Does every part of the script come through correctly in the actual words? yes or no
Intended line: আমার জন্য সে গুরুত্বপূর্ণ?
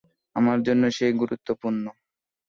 yes